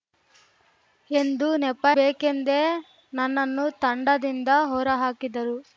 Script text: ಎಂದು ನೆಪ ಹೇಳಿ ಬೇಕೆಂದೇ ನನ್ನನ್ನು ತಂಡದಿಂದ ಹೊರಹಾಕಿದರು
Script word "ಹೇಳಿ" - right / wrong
wrong